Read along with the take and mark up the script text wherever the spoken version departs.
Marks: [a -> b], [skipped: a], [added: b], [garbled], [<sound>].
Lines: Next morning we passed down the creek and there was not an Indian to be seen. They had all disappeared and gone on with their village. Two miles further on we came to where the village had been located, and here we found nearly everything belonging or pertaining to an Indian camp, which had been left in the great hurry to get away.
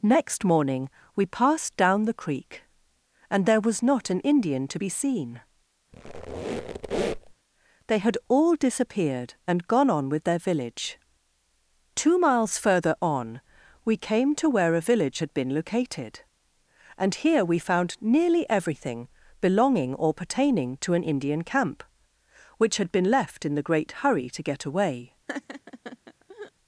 Next morning we passed down the creek and there was not an Indian to be seen. [squeak] They had all disappeared and gone on with their village. Two miles further on we came to where [the -> a] village had been located, and here we found nearly everything belonging or pertaining to an Indian camp, which had been left in the great hurry to get away. [laugh]